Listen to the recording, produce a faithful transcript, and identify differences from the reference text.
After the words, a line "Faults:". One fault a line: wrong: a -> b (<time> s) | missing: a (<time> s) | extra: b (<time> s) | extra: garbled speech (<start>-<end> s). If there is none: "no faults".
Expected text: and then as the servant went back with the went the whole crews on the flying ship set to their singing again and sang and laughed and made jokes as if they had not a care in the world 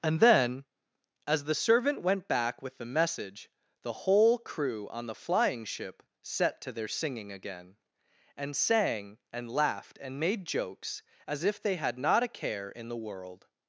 and then as the servant went back with the message the whole crew on the flying ship set to their singing again and sang and laughed and made jokes as if they had not a care in the world
Faults:
wrong: went -> message (2.9 s)
wrong: crews -> crew (4.4 s)